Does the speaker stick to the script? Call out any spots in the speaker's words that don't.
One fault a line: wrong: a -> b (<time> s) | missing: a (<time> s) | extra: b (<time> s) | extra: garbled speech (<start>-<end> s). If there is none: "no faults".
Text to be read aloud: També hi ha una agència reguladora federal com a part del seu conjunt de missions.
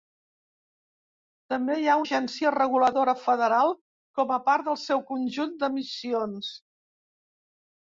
missing: una (2.0 s)